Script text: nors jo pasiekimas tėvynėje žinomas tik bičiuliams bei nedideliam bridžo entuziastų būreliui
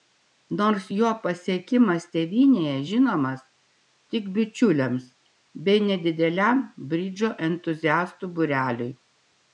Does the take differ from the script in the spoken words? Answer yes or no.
no